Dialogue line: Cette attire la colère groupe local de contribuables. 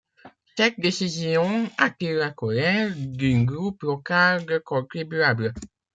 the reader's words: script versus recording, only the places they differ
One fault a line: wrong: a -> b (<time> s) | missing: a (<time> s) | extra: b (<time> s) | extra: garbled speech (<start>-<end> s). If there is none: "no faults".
extra: décision (0.8 s)
extra: d'un (3.0 s)